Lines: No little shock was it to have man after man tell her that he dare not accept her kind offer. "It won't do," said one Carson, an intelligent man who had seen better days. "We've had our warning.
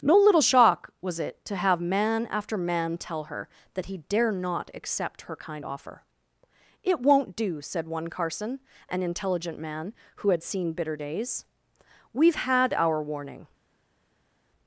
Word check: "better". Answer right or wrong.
wrong